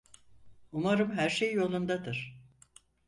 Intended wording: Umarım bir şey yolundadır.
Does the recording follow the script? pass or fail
fail